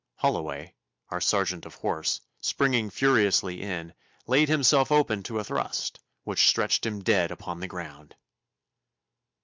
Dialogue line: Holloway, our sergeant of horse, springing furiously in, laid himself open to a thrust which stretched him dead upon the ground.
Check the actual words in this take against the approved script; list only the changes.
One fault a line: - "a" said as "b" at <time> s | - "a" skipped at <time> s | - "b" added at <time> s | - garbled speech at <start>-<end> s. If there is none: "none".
none